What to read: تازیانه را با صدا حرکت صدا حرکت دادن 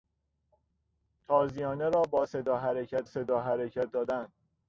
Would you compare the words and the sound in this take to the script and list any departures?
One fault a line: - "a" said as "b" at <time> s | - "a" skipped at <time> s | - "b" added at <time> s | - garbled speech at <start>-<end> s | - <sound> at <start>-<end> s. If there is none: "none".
none